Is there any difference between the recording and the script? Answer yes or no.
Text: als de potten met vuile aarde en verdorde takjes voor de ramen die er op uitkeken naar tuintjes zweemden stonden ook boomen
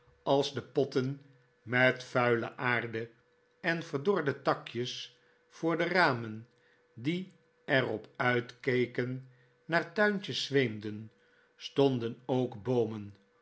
no